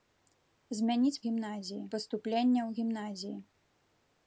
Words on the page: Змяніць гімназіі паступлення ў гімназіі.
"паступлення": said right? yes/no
yes